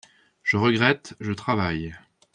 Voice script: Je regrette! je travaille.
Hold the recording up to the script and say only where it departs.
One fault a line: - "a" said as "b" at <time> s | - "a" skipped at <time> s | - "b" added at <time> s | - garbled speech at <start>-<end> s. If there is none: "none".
none